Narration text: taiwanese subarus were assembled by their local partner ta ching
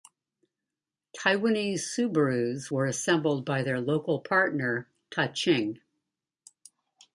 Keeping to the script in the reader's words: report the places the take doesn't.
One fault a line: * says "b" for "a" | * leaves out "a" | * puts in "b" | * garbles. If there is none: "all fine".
all fine